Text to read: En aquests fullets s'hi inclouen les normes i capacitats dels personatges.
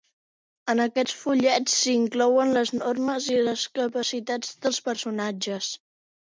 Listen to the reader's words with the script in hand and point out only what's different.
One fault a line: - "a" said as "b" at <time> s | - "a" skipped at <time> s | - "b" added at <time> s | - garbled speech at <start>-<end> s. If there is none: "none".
- "les" added at 3.5 s